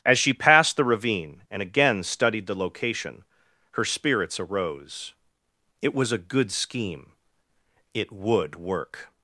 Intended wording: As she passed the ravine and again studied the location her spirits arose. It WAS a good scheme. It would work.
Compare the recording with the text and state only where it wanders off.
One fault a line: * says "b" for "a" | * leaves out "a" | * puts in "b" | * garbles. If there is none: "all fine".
all fine